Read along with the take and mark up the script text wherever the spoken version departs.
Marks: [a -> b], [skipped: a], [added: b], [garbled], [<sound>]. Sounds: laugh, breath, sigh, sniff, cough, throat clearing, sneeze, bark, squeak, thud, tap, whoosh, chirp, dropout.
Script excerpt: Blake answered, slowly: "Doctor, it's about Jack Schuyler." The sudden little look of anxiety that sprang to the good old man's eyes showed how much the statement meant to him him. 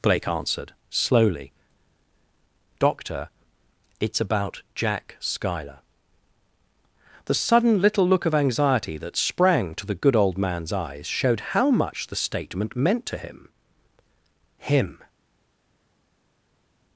Blake answered, slowly: "Doctor, it's about Jack Schuyler." The sudden little look of anxiety that sprang to the good old man's eyes showed how much the statement meant to him him.